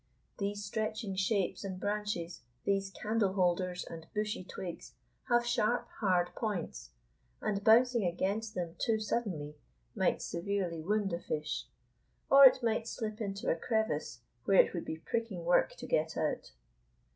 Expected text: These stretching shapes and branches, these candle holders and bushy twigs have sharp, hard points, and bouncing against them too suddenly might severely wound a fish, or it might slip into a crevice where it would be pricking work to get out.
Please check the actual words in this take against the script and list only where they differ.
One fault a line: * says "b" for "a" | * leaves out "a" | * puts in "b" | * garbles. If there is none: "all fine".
all fine